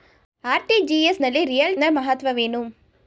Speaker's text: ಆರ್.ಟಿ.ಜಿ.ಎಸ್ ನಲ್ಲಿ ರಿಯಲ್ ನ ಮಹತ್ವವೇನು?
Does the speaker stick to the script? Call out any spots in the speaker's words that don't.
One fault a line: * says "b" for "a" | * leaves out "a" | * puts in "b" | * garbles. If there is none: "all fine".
all fine